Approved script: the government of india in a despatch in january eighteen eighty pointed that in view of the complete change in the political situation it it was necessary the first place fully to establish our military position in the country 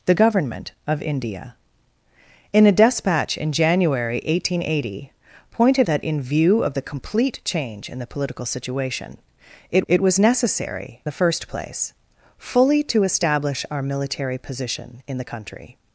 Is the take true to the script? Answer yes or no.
yes